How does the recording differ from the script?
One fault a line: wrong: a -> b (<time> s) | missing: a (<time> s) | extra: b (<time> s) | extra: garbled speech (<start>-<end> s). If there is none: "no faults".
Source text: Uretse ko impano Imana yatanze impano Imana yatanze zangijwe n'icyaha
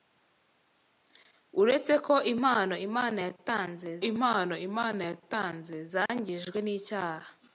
no faults